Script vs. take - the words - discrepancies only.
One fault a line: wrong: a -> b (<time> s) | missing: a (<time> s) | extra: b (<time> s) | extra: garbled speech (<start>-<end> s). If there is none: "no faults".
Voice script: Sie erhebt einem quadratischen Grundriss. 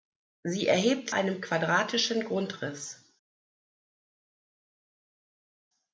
no faults